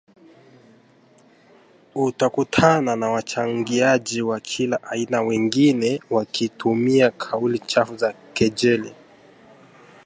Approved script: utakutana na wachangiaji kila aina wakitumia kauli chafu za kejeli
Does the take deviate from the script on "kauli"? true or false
false